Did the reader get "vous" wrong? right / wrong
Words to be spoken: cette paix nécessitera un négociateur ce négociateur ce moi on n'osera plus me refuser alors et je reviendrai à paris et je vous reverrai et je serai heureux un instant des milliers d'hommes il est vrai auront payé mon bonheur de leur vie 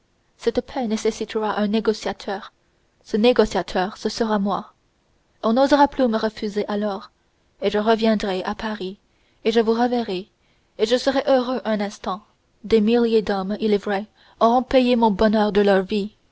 right